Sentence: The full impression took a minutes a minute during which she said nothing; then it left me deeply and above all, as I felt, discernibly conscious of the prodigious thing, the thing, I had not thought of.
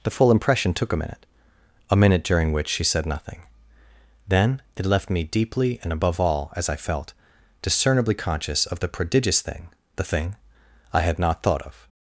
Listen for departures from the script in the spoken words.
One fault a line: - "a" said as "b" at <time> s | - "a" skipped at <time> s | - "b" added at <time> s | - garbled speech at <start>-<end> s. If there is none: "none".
- "minutes" said as "minute" at 1.0 s